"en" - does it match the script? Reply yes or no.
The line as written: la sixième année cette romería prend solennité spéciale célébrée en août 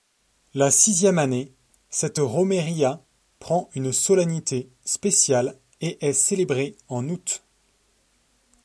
yes